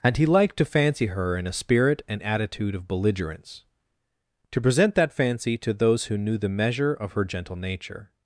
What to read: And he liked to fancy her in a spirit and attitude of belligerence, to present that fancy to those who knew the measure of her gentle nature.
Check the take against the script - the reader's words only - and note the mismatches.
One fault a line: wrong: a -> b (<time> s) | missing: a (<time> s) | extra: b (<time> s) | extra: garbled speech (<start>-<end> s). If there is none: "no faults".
no faults